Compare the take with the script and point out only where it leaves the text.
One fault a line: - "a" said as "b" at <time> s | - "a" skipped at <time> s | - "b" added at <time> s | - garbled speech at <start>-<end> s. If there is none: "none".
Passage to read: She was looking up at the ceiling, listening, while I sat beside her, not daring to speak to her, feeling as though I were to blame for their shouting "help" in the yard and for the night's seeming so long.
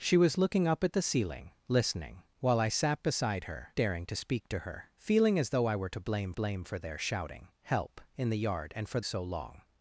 - "not" skipped at 3.8 s
- "blame" added at 6.3 s
- "the night's seeming" skipped at 9.0 s